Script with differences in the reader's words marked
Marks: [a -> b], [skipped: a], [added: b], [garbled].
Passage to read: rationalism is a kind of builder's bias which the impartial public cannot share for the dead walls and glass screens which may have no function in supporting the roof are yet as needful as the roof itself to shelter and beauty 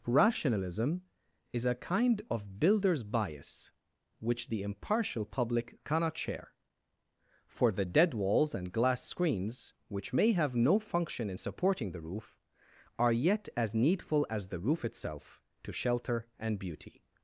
rationalism is a kind of builder's bias which the impartial public cannot share for the dead walls and glass screens which may have no function in supporting the roof are yet as needful as the roof itself to shelter and beauty